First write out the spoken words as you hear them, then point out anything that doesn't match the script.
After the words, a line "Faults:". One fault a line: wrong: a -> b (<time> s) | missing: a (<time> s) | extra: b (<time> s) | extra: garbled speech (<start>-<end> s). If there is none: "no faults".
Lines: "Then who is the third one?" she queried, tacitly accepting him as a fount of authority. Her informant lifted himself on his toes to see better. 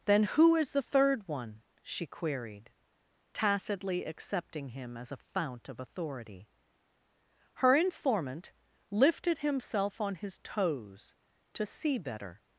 "Then who is the third one?" she queried, tacitly accepting him as a fount of authority. Her informant lifted himself on his toes to see better.
Faults:
no faults